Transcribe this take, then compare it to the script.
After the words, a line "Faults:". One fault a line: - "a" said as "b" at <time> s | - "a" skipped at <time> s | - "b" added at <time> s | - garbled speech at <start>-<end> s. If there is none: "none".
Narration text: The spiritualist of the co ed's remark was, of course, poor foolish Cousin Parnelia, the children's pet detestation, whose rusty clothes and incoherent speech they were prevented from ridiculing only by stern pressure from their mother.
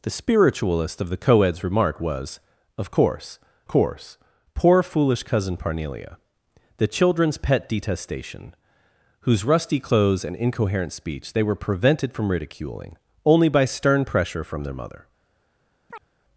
The spiritualist of the co ed's remark was, of course course, poor foolish Cousin Parnelia, the children's pet detestation, whose rusty clothes and incoherent speech they were prevented from ridiculing only by stern pressure from their mother.
Faults:
- "course" added at 3.7 s